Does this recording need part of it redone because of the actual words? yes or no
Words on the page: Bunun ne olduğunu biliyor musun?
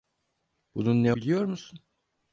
yes